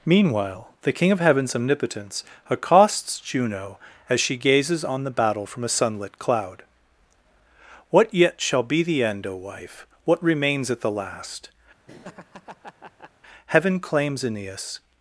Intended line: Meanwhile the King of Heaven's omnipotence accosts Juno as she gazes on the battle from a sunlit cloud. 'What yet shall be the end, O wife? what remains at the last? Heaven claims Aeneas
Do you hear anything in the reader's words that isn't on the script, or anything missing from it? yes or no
no